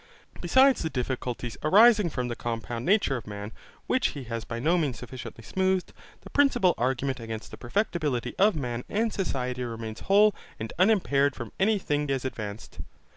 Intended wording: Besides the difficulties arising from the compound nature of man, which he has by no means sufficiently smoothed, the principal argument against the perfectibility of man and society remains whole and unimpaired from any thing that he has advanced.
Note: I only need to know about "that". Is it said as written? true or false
false